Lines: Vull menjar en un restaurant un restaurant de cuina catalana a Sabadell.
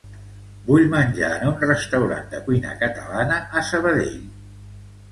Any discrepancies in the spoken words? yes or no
yes